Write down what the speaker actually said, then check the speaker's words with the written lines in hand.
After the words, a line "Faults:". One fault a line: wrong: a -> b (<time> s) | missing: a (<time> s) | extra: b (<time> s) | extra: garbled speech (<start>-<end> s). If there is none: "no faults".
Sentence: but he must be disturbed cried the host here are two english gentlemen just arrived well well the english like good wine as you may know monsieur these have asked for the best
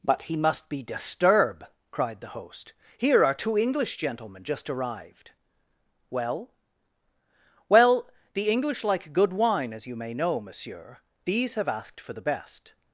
but he must be disturb cried the host here are two english gentlemen just arrived well well the english like good wine as you may know monsieur these have asked for the best
Faults:
wrong: disturbed -> disturb (0.8 s)